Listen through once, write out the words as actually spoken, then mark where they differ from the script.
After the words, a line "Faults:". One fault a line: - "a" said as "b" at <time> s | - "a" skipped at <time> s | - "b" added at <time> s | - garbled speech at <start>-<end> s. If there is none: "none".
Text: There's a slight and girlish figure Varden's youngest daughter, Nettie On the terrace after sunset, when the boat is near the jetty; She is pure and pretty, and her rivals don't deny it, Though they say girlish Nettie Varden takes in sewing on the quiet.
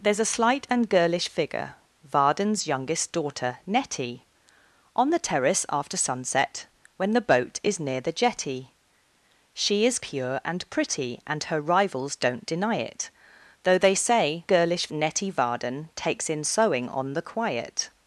There's a slight and girlish figure Varden's youngest daughter, Nettie On the terrace after sunset, when the boat is near the jetty; She is pure and pretty, and her rivals don't deny it, Though they say girlish Nettie Varden takes in sewing on the quiet.
Faults:
none